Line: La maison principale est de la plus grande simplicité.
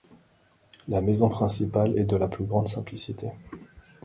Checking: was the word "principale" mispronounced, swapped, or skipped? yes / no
no